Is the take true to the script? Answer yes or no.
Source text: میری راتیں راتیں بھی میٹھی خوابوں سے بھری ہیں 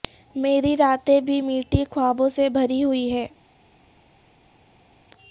no